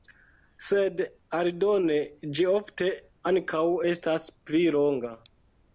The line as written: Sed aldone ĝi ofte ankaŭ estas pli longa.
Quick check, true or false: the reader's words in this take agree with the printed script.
true